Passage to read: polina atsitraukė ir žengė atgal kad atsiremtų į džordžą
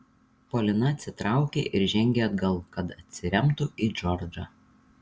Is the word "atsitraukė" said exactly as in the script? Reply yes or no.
yes